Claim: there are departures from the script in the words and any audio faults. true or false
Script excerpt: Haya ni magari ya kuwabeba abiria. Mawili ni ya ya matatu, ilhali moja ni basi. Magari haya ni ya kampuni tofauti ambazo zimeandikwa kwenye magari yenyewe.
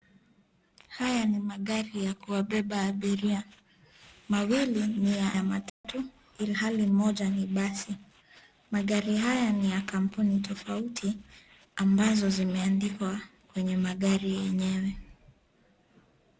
true